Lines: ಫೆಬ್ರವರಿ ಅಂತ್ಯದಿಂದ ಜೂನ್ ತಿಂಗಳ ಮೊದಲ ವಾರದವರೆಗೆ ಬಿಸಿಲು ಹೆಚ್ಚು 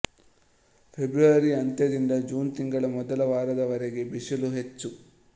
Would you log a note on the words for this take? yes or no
no